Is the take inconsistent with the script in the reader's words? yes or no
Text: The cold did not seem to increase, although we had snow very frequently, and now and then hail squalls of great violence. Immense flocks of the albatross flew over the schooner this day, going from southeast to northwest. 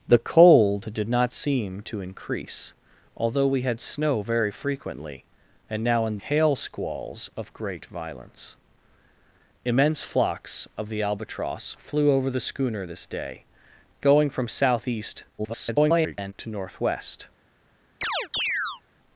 yes